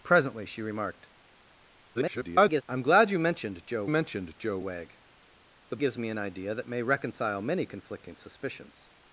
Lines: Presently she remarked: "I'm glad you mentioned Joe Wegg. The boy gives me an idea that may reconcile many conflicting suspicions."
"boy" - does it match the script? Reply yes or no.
no